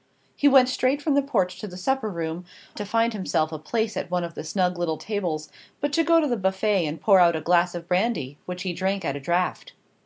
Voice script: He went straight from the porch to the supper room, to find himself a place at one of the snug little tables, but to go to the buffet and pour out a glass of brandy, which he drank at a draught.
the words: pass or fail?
pass